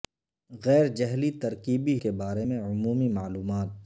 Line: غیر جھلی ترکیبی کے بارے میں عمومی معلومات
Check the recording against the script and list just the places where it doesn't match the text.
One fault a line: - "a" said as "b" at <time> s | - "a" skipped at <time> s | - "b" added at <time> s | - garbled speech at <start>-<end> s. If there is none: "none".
none